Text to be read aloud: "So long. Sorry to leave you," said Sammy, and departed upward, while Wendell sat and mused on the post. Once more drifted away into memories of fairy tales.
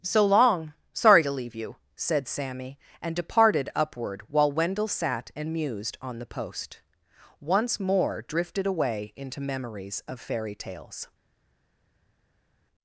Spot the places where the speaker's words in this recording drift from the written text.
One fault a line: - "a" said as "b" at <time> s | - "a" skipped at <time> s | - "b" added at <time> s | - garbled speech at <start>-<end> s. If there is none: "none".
none